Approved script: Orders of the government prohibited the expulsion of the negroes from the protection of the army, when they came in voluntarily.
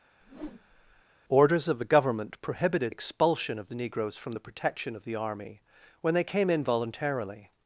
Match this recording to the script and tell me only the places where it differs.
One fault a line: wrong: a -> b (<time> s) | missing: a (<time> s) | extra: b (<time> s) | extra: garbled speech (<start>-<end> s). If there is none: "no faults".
missing: the (2.9 s)